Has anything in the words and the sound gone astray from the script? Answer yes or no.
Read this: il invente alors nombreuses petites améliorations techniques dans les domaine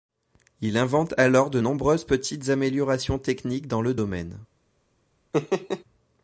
yes